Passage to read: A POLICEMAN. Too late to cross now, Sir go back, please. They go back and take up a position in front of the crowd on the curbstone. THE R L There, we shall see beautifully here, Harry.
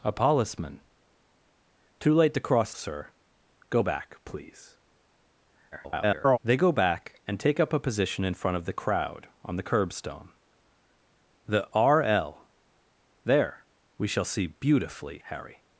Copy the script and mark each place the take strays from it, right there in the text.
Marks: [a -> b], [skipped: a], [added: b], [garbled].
A POLICEMAN. Too late to cross [skipped: now,] Sir go back, please. [garbled] They go back and take up a position in front of the crowd on the curbstone. THE R L There, we shall see beautifully [skipped: here,] Harry.